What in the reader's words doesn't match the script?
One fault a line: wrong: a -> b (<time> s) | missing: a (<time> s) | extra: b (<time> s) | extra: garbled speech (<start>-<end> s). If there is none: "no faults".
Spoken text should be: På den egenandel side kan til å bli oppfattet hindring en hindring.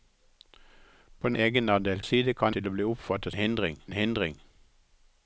no faults